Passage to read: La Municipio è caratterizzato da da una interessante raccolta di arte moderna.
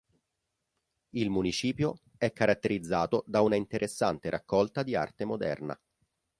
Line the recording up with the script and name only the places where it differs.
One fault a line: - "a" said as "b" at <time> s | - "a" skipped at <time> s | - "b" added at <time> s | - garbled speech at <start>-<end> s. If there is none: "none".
- "La" said as "Il" at 1.1 s
- "da" skipped at 3.4 s